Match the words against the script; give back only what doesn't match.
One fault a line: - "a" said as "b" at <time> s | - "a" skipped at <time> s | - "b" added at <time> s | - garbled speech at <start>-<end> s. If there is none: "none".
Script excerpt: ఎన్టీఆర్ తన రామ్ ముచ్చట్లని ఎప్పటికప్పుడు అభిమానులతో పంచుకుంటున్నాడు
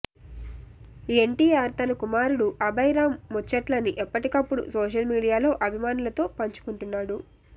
- "కుమారుడు అభయ్" added at 2.0 s
- "సోషల్ మీడియాలో" added at 4.8 s